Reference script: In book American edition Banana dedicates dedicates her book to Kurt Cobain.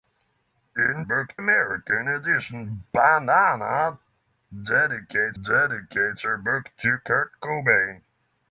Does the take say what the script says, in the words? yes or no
yes